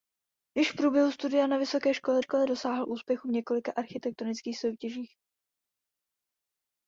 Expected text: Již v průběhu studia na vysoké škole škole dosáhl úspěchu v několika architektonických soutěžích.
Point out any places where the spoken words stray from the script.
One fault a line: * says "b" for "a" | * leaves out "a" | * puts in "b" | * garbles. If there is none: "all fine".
all fine